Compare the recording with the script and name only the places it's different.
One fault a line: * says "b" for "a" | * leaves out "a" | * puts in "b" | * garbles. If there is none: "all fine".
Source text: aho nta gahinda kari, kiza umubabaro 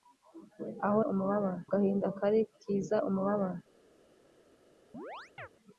* says "umubabaro" for "nta"